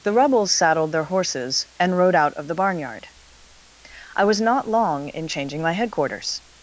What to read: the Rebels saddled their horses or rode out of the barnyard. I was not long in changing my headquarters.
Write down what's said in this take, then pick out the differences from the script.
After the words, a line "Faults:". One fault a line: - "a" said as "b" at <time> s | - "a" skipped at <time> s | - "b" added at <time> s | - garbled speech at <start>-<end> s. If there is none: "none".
the Rebels saddled their horses and rode out of the barnyard. I was not long in changing my headquarters.
Faults:
- "or" said as "and" at 1.8 s